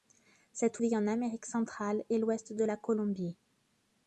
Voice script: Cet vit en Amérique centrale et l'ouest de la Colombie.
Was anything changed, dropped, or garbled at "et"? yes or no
no